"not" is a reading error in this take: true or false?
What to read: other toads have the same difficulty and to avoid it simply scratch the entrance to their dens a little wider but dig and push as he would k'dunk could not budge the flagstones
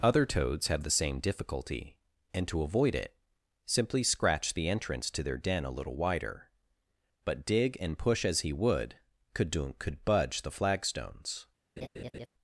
true